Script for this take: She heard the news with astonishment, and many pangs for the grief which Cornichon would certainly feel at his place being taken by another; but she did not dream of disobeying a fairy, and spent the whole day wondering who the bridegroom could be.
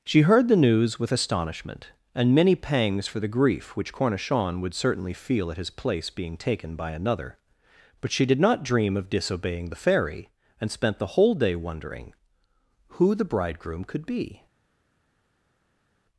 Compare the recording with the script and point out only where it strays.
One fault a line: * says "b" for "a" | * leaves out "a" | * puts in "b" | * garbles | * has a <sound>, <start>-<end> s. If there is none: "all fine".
* says "the" for "a"